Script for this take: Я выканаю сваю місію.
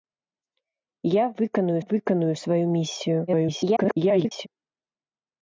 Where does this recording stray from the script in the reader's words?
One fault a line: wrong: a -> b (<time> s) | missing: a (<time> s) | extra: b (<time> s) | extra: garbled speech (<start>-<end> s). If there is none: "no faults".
extra: выканаю (1.8 s)
extra: garbled speech (3.3-4.5 s)